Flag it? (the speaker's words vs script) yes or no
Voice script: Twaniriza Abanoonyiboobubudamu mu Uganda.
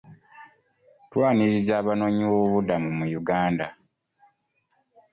no